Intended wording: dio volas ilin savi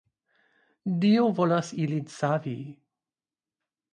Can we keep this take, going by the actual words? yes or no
yes